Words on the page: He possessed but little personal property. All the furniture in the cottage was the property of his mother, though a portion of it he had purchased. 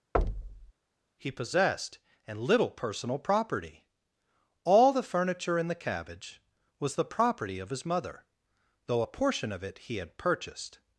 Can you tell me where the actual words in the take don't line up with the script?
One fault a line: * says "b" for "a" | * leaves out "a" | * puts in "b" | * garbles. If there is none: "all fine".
* says "and" for "but"
* says "cabbage" for "cottage"